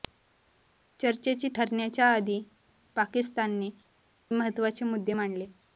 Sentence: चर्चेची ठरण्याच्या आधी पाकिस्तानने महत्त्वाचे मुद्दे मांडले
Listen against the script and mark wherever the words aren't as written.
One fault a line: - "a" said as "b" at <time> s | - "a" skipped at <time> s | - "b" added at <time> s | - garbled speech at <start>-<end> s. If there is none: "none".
none